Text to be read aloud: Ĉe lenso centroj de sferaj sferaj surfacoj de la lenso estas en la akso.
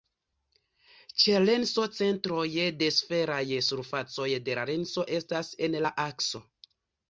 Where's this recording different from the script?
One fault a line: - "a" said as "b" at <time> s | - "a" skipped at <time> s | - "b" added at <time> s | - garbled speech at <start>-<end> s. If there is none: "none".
- "sferaj" skipped at 3.4 s